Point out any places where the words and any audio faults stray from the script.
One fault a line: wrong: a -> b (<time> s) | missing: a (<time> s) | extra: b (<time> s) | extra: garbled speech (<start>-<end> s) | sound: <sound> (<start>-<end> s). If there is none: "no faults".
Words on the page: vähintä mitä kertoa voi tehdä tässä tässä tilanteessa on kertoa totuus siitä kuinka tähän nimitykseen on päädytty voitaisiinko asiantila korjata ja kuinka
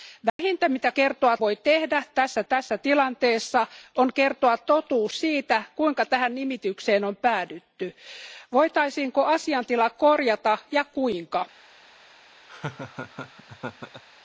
sound: dropout (0.3-0.4 s)
sound: laugh (12.5-14.0 s)